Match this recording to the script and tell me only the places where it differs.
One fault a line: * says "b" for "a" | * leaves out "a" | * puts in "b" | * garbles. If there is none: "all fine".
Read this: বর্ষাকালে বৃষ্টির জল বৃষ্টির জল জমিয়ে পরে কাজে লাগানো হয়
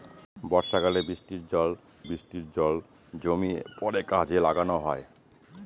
all fine